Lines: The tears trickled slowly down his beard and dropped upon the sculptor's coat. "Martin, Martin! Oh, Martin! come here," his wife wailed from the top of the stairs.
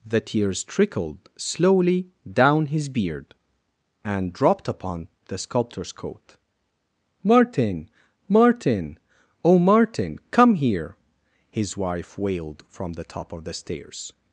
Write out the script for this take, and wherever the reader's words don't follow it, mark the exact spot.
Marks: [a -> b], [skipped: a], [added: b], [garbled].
The tears trickled slowly down his beard and dropped upon the sculptor's coat. "Martin, Martin! Oh, Martin! come here," his wife wailed from the top of the stairs.